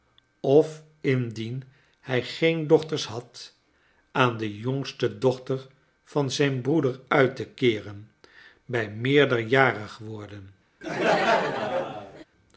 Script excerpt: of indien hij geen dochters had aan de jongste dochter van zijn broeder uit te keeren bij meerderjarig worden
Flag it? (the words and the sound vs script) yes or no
yes